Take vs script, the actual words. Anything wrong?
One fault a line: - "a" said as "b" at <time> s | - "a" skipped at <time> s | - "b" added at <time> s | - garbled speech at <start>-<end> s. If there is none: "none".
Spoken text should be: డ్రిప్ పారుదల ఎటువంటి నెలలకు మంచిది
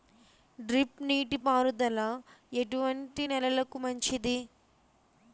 - "నీటి" added at 1.0 s